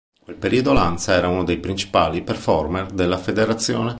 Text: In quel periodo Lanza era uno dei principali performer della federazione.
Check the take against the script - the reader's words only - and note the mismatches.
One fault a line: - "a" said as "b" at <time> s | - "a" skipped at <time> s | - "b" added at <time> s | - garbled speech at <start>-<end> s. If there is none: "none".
none